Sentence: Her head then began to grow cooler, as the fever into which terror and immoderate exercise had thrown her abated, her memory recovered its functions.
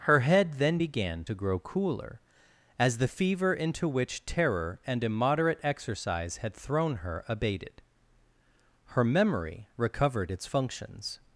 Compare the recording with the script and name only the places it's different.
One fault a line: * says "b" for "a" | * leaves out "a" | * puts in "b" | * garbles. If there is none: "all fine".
all fine